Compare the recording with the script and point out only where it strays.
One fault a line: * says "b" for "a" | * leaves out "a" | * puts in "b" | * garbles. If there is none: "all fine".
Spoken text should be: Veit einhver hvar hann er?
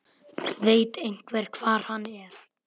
all fine